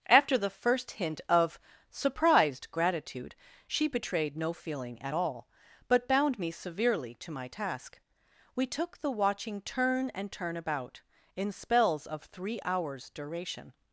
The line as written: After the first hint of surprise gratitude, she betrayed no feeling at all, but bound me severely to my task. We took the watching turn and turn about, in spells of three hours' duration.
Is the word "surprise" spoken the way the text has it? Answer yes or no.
no